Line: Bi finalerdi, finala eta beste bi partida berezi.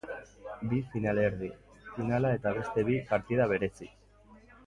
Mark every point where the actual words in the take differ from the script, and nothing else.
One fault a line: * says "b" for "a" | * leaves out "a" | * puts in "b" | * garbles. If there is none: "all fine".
all fine